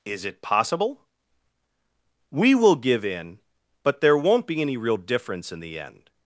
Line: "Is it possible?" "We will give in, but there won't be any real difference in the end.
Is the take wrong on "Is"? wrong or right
right